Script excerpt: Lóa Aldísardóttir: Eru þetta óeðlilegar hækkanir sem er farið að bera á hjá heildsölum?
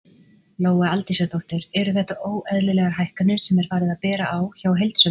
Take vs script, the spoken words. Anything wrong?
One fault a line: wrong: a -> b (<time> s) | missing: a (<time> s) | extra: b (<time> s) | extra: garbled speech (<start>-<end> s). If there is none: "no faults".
no faults